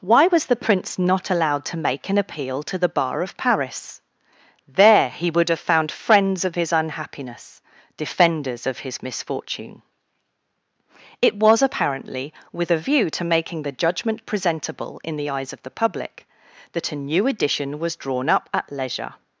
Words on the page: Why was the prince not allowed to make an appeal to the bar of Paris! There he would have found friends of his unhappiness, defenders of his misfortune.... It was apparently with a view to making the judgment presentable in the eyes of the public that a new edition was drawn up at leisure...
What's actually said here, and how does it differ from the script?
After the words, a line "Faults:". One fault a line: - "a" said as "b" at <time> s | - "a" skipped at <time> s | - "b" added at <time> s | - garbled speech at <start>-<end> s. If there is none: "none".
Why was the prince not allowed to make an appeal to the bar of Paris! There he would have found friends of his unhappiness, defenders of his misfortune.... It was apparently with a view to making the judgment presentable in the eyes of the public that a new edition was drawn up at leisure...
Faults:
none